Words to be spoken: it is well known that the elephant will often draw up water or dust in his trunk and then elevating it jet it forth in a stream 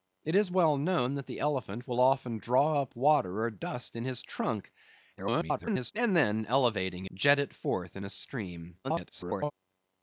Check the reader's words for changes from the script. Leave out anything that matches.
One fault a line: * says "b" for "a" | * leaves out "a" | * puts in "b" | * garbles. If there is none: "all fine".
* garbles
* leaves out "it"
* garbles